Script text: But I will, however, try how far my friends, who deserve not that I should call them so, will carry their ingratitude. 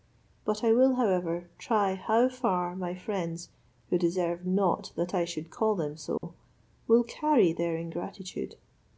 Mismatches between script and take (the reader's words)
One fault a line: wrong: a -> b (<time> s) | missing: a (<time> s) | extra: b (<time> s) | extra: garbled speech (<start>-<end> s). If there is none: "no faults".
no faults